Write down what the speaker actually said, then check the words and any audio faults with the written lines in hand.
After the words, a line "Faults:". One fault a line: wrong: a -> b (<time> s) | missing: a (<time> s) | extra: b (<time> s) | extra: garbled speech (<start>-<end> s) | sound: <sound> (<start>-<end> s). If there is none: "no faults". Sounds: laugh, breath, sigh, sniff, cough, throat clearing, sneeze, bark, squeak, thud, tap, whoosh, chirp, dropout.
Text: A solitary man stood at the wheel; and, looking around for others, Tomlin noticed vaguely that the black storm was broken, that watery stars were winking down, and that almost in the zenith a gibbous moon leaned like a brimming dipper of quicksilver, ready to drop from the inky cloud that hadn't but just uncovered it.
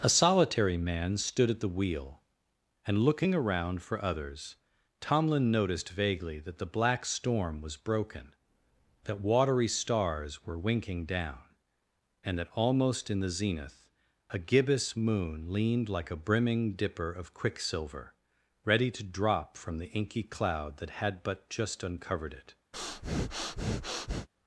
A solitary man stood at the wheel; and, looking around for others, Tomlin noticed vaguely that the black storm was broken, that watery stars were winking down, and that almost in the zenith a gibbous moon leaned like a brimming dipper of quicksilver, ready to drop from the inky cloud that had but just uncovered it.
Faults:
wrong: hadn't -> had (21.0 s)
sound: breath (22.7-24.3 s)